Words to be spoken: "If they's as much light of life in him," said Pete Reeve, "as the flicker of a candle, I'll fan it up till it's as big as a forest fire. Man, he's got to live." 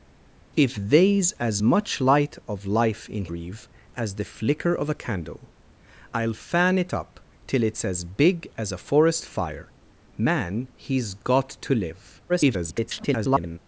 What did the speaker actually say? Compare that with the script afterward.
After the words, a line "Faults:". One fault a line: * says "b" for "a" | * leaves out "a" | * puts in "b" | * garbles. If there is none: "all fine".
"If they's as much light of life in Reeve, "as the flicker of a candle, I'll fan it up till it's as big as a forest fire. Man, he's got to live." [garbled]
Faults:
* leaves out "him said Pete"
* garbles